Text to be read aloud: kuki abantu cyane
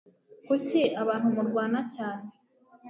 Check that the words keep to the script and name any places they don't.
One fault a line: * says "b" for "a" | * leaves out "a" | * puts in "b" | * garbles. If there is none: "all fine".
* puts in "murwana"